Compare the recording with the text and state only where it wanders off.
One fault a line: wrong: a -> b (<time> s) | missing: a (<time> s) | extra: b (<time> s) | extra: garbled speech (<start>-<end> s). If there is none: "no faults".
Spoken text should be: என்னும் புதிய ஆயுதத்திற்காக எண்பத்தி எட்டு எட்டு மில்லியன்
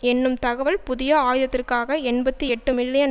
extra: தகவல் (0.4 s)
missing: எட்டு (2.7 s)